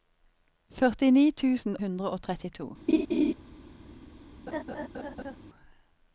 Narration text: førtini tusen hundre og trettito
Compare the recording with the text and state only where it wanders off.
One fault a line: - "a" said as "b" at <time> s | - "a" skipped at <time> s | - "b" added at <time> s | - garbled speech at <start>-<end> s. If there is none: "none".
none